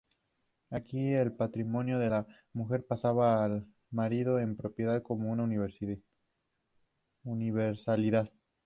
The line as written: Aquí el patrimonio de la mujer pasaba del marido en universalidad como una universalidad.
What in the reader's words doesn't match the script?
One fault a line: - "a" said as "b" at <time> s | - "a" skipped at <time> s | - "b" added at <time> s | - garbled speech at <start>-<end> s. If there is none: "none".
- "del" said as "al" at 3.4 s
- "universalidad" said as "propiedad" at 4.5 s